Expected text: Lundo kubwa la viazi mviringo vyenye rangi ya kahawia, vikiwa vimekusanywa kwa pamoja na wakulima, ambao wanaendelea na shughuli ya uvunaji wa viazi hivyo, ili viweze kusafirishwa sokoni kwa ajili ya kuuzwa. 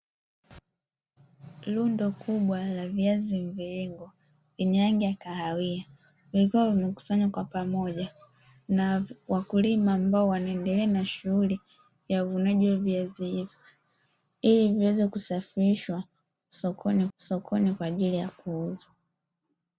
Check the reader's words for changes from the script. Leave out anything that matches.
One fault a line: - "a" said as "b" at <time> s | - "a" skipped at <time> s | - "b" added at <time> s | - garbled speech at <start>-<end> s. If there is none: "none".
- "sokoni" added at 17.1 s